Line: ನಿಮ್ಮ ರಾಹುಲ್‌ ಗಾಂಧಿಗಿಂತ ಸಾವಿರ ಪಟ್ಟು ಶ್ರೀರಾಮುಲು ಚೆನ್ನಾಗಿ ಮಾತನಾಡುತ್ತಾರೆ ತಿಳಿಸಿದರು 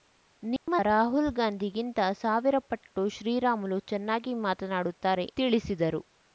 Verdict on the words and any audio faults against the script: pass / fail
fail